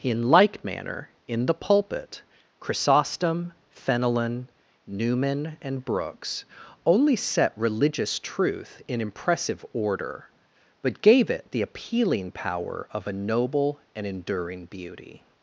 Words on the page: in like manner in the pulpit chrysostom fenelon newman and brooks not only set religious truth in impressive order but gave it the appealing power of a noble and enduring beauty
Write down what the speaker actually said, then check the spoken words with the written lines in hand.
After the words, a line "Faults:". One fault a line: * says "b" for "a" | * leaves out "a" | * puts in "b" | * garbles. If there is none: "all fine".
in like manner in the pulpit chrysostom fenelon newman and brooks only set religious truth in impressive order but gave it the appealing power of a noble and enduring beauty
Faults:
* leaves out "not"